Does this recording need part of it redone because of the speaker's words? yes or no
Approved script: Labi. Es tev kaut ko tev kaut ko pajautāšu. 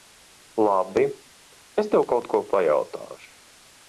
yes